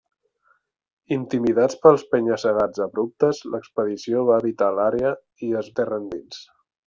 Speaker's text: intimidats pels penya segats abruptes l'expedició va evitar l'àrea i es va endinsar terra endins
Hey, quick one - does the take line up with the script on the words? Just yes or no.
no